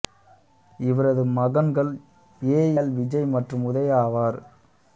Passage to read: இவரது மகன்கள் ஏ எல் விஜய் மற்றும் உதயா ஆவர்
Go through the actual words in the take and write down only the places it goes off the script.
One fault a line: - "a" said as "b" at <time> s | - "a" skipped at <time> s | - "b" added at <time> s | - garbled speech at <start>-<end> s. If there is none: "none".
none